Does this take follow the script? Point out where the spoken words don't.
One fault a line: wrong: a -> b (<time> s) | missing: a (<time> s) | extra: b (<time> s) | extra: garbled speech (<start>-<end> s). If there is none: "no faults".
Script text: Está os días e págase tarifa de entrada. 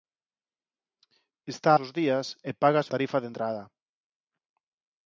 no faults